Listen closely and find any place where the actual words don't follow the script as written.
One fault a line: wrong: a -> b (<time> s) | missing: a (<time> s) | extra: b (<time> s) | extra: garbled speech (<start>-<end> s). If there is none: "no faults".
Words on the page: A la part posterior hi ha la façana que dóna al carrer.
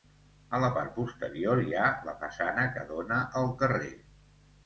no faults